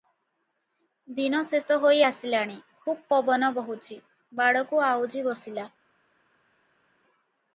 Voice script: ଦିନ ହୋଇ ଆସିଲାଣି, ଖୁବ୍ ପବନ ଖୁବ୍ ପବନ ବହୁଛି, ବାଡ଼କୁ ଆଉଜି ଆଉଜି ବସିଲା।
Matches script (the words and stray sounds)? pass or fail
fail